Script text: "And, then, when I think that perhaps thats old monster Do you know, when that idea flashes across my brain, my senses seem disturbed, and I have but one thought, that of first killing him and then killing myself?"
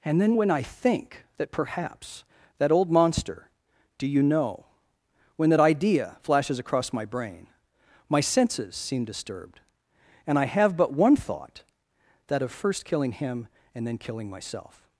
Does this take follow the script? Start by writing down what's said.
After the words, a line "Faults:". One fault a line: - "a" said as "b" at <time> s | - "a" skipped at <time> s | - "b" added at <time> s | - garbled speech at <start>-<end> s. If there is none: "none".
"And, then, when I think that perhaps that old monster Do you know, when that idea flashes across my brain, my senses seem disturbed, and I have but one thought, that of first killing him and then killing myself?"
Faults:
- "thats" said as "that" at 2.6 s